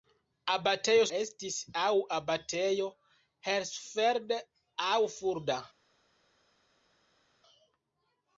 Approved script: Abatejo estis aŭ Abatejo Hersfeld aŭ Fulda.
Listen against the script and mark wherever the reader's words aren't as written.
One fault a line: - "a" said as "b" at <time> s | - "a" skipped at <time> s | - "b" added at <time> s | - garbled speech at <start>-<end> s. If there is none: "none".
none